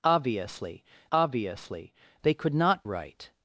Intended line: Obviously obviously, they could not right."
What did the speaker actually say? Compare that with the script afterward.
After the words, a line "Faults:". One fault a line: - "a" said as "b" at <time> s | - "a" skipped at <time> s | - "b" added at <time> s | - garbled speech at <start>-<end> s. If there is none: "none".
Obviously obviously, they could not right."
Faults:
none